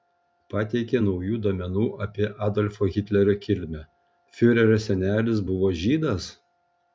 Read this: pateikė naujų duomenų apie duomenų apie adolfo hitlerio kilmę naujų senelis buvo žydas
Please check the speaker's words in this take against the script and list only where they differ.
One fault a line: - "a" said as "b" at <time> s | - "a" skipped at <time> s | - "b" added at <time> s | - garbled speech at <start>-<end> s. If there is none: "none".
- "duomenų apie" skipped at 2.3 s
- "naujų" said as "fiurerio" at 4.4 s